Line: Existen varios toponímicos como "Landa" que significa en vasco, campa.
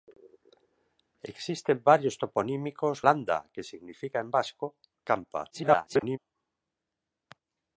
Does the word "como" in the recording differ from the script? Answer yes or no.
yes